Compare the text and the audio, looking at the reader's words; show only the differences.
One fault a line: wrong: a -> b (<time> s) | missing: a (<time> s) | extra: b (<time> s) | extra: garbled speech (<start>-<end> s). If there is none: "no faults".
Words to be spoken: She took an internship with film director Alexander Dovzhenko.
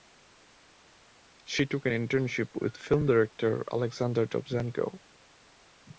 no faults